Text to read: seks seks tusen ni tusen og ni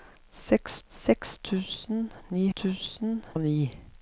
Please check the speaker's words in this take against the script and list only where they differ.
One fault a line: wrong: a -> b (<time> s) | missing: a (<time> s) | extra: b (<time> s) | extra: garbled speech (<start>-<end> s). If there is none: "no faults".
no faults